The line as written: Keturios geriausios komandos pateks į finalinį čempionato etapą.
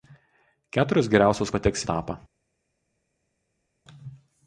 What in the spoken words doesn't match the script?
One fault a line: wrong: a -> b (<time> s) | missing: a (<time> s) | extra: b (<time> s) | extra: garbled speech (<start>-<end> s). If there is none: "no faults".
missing: komandos (1.5 s)
missing: finalinį čempionato (1.9 s)